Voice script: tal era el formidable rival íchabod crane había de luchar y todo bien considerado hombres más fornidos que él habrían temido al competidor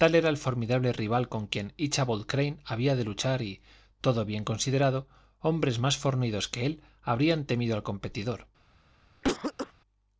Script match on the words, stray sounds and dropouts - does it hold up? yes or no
no